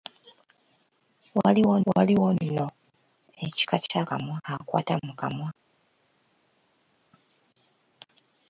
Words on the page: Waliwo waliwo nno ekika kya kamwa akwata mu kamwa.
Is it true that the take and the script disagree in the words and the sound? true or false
false